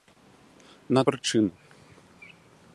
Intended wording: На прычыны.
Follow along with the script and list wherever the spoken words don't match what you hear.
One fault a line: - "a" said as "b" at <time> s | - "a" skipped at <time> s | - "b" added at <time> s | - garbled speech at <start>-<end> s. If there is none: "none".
none